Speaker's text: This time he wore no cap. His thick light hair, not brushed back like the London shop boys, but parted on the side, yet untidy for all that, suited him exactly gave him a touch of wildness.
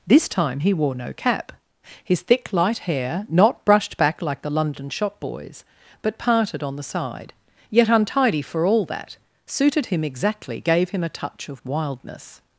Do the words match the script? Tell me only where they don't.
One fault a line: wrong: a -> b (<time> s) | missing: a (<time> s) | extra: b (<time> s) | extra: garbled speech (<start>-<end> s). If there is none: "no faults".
no faults